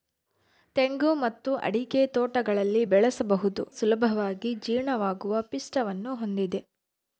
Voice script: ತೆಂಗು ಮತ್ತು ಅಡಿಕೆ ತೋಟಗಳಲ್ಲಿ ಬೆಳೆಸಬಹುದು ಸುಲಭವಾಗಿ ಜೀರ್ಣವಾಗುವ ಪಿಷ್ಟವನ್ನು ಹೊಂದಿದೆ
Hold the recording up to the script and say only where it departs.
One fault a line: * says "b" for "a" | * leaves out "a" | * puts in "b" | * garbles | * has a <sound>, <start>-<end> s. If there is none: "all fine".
all fine